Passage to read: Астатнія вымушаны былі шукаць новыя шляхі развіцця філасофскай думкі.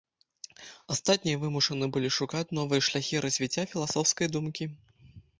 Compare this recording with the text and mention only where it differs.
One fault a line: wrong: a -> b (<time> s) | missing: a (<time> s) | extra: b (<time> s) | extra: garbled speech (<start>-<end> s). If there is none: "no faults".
no faults